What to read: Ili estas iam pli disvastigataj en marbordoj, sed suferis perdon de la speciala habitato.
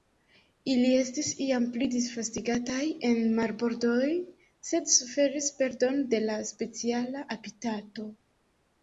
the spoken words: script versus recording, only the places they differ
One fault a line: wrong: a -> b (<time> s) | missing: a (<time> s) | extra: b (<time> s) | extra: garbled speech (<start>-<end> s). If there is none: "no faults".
wrong: estas -> estis (1.0 s)